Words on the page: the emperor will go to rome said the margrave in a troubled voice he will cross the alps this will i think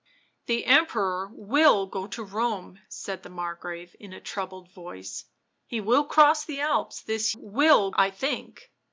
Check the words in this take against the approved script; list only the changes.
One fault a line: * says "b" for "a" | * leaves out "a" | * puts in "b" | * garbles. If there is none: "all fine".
all fine